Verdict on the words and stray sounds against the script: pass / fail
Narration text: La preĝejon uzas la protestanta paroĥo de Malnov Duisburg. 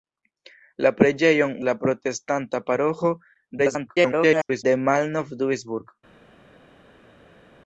fail